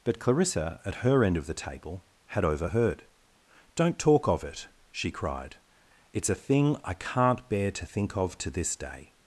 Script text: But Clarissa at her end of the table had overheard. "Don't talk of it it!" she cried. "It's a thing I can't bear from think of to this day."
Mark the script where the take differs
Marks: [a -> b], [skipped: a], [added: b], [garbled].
But Clarissa at her end of the table had overheard. "Don't talk of it [skipped: it!"] she cried. "It's a thing I can't bear [from -> to] think of to this day."